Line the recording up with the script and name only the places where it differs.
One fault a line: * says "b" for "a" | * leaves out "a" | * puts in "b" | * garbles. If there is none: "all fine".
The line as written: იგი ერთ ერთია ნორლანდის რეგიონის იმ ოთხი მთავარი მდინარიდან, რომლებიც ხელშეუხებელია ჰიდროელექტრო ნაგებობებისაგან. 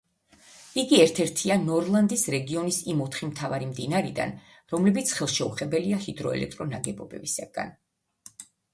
all fine